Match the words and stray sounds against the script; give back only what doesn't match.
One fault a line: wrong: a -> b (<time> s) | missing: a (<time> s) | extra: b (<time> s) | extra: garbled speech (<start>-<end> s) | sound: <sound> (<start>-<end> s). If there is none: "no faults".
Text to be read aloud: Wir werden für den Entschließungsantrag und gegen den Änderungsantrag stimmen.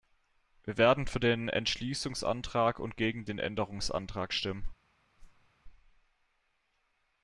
sound: whoosh (5.2-5.5 s)